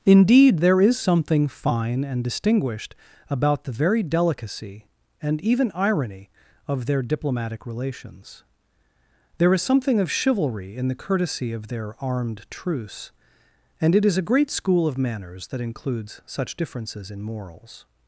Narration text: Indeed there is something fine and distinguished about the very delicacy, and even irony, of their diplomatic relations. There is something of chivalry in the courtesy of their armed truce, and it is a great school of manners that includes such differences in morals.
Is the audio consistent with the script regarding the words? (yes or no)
yes